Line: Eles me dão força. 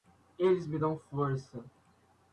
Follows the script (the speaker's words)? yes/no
yes